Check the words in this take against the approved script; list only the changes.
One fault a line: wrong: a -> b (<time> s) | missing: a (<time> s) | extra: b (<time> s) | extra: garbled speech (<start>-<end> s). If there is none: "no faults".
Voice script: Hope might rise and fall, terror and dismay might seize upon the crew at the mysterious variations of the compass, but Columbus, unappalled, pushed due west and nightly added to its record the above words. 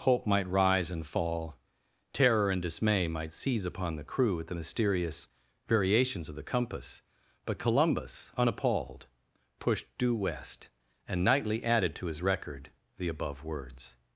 wrong: its -> his (12.1 s)